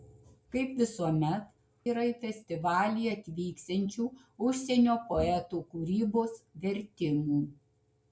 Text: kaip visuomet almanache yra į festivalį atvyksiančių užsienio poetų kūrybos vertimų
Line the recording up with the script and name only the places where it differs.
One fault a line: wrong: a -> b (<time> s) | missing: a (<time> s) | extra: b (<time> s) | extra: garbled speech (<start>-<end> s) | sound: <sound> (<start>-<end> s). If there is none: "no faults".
missing: almanache (1.4 s)